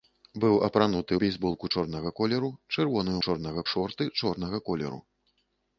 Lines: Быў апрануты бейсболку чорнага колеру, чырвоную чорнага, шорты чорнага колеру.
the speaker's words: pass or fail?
pass